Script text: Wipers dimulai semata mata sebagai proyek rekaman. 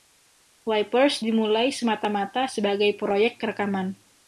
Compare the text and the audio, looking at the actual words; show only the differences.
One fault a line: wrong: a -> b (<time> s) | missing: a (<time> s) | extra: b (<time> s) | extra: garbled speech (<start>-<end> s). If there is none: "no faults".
no faults